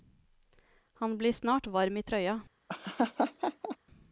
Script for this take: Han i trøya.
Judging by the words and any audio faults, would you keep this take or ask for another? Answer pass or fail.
fail